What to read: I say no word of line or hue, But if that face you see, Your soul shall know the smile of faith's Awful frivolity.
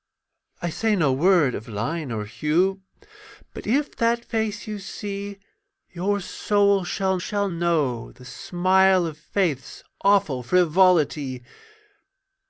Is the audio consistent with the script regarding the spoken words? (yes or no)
no